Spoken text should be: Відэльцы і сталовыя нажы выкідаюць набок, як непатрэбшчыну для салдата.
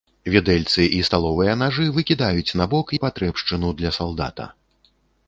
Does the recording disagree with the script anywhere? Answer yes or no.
yes